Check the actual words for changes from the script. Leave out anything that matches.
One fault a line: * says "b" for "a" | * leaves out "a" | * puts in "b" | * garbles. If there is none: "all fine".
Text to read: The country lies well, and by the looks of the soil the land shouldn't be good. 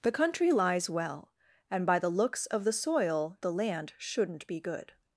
all fine